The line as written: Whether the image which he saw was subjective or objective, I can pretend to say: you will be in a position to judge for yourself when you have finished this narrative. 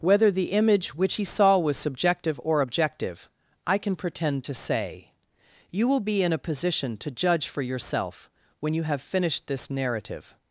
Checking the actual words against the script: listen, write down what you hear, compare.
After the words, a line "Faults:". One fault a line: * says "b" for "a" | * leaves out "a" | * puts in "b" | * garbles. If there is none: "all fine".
Whether the image which he saw was subjective or objective, I can pretend to say: you will be in a position to judge for yourself when you have finished this narrative.
Faults:
all fine